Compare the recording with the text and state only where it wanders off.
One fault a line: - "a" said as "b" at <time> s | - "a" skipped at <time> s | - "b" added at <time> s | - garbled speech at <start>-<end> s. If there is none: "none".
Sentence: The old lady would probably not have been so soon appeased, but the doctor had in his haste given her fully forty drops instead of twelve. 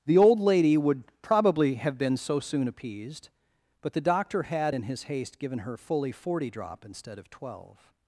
- "not" skipped at 1.8 s
- "drops" said as "drop" at 6.5 s